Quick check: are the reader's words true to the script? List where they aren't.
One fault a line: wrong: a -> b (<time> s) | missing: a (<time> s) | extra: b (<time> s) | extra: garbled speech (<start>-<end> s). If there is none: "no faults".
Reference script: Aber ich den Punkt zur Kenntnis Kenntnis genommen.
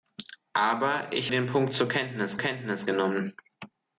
no faults